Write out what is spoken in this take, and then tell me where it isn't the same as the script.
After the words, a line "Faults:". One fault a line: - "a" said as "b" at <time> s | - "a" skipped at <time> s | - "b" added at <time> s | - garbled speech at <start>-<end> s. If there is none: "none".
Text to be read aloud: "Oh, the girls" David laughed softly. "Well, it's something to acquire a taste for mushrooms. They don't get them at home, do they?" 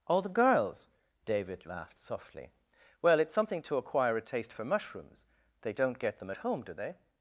"Oh, the girls" David laughed softly. "Well, it's something to acquire a taste for mushrooms. They don't get them at home, do they?"
Faults:
none